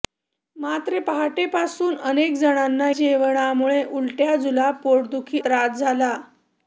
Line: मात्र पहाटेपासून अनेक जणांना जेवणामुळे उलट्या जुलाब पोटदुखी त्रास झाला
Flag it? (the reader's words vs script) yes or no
no